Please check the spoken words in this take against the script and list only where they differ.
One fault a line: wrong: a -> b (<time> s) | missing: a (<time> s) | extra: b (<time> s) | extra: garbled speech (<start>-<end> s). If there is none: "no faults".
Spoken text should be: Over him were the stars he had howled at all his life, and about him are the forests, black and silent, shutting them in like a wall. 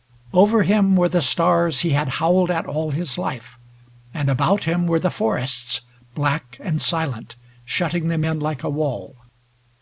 wrong: are -> were (4.9 s)